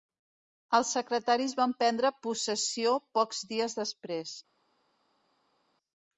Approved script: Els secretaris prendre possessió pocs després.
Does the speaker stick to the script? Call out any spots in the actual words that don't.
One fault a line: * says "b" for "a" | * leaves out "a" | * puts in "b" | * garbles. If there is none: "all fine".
* puts in "van"
* puts in "dies"